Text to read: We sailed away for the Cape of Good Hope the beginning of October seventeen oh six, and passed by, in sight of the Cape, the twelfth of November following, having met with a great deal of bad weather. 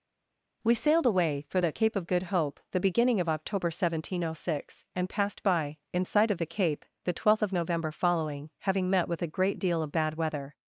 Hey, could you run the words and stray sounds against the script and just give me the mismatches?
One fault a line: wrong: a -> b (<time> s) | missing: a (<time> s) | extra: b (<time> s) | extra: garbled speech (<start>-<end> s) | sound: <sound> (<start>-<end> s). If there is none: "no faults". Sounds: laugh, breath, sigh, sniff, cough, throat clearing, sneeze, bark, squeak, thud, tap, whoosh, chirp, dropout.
no faults